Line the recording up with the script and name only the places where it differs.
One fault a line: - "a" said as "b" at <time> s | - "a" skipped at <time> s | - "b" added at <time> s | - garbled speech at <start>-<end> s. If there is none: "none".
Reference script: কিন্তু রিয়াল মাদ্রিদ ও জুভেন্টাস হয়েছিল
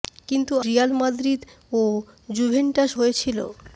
none